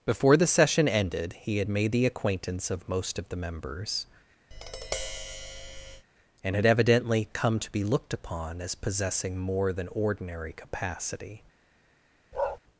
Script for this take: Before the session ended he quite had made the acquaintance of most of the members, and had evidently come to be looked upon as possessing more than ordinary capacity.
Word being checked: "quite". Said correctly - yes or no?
no